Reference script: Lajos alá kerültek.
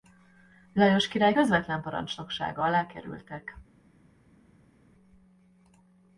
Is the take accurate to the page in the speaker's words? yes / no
no